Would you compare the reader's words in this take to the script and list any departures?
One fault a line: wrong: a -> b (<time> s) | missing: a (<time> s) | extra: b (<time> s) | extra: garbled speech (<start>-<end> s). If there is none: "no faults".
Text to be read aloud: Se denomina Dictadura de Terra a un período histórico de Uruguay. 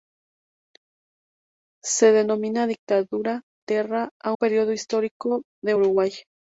missing: de (3.4 s)
missing: un (4.3 s)